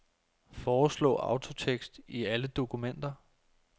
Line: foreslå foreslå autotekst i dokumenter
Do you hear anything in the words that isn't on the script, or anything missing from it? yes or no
yes